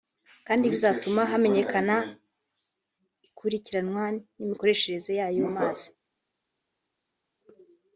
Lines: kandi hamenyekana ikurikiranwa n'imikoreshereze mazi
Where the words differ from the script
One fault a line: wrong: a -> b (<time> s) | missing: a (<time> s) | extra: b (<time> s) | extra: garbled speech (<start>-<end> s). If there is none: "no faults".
extra: bizatuma (0.7 s)
extra: y'ayo (5.2 s)